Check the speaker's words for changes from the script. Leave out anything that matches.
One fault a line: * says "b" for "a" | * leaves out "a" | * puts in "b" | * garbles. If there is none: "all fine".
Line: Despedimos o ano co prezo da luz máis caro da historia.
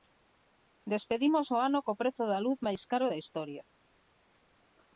all fine